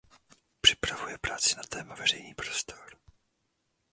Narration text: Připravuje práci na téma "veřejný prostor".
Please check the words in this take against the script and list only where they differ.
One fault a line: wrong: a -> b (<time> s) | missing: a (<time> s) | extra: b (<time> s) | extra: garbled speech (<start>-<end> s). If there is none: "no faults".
no faults